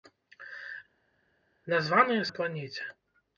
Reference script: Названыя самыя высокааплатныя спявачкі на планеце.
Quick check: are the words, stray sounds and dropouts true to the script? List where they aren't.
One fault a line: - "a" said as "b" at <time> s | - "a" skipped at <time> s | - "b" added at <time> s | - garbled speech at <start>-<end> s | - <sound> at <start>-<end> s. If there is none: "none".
- "самыя высокааплатныя спявачкі" skipped at 2.3 s